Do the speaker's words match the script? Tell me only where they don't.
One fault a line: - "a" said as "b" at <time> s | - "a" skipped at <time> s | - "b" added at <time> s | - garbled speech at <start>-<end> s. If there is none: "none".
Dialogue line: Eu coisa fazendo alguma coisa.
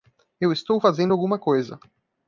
- "coisa" said as "estou" at 0.5 s